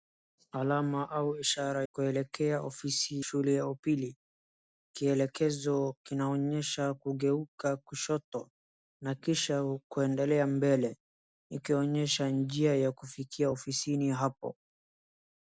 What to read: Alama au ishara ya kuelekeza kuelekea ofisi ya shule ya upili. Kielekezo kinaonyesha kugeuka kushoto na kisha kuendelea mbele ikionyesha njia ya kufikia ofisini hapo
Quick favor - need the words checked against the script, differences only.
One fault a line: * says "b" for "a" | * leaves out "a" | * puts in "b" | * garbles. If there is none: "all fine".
* leaves out "ya kuelekeza"
* leaves out "ya"